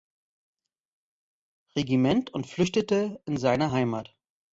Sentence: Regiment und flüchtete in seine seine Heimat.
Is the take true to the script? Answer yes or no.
no